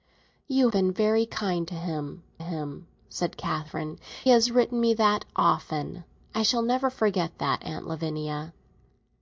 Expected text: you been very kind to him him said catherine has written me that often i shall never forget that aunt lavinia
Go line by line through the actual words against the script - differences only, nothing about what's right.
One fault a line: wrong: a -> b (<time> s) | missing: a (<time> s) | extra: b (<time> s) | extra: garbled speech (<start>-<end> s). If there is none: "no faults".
no faults